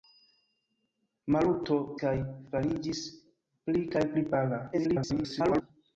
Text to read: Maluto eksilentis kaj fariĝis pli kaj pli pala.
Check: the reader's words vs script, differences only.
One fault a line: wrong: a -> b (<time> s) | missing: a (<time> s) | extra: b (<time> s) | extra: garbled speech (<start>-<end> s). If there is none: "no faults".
missing: eksilentis (1.8 s)
extra: garbled speech (4.7-5.6 s)